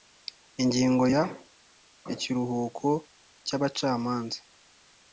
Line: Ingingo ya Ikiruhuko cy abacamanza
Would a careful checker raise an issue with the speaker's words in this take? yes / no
no